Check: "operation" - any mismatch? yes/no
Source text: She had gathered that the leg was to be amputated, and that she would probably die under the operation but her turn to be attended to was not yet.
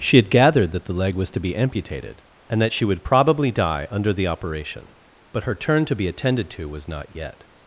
no